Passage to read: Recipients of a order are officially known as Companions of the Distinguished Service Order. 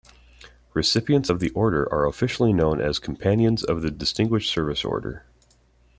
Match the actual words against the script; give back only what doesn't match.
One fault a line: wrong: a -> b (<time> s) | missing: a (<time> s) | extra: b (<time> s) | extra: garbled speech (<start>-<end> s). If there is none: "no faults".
wrong: a -> the (1.4 s)